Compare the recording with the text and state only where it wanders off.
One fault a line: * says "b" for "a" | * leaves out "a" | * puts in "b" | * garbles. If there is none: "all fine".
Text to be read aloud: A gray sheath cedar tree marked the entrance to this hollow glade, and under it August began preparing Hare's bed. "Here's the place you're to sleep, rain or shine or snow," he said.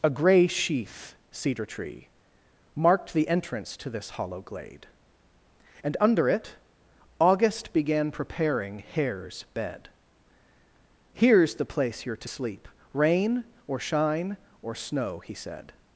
all fine